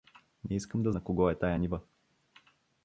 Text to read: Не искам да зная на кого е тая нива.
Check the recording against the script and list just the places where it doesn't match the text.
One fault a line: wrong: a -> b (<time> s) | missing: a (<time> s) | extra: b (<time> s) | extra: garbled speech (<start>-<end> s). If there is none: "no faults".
missing: зная (0.9 s)